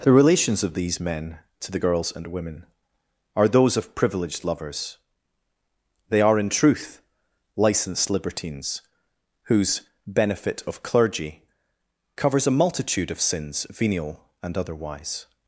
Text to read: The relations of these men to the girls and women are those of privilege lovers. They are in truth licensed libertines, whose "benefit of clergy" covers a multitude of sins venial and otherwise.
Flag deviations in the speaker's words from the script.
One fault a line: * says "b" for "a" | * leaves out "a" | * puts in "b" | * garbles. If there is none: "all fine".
* says "privileged" for "privilege"